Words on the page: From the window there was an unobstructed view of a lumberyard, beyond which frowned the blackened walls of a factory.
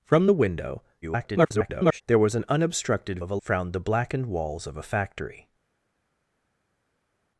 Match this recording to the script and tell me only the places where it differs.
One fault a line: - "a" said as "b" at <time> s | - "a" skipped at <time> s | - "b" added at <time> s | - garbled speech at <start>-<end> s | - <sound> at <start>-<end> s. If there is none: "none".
- garbled speech at 1.0-2.0 s
- "view" skipped at 3.2 s
- "lumberyard beyond which" skipped at 3.4 s